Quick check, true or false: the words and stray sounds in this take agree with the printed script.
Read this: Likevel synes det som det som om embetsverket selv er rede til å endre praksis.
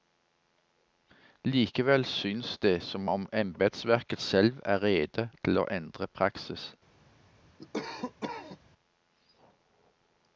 false